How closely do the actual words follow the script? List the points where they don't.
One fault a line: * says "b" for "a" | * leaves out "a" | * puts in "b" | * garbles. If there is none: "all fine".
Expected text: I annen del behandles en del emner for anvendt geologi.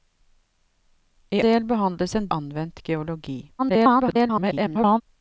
* leaves out "annen"
* leaves out "del emner for"
* garbles